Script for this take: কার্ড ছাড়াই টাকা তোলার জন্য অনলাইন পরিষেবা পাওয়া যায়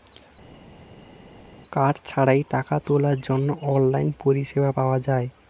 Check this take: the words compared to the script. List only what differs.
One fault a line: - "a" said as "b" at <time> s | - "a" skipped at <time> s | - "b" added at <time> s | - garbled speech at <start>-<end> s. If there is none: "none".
none